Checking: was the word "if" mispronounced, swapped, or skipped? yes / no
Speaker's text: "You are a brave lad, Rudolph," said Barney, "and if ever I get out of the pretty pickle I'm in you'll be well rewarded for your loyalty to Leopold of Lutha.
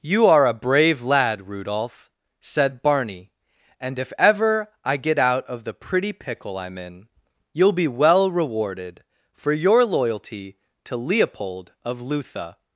no